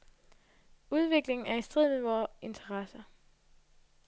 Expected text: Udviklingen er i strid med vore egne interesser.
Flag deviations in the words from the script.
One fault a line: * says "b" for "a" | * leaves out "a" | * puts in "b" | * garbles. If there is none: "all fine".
* leaves out "egne"